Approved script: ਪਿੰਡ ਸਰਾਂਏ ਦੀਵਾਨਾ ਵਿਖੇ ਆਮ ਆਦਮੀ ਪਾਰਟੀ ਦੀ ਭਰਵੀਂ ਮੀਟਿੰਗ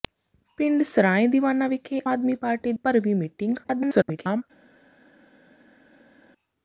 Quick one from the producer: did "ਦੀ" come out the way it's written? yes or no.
no